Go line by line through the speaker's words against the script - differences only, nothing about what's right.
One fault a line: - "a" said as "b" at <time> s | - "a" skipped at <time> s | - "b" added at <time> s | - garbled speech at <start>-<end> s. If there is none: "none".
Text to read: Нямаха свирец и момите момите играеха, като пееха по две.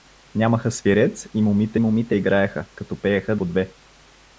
none